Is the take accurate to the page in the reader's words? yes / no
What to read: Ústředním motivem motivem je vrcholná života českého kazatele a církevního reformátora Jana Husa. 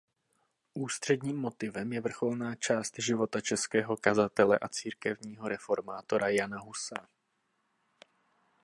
no